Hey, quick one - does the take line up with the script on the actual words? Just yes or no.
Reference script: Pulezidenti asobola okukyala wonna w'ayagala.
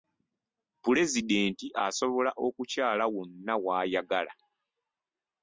yes